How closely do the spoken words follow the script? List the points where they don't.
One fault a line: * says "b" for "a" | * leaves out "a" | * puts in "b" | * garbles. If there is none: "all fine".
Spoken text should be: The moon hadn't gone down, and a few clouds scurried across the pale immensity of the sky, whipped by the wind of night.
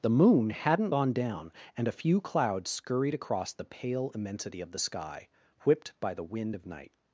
all fine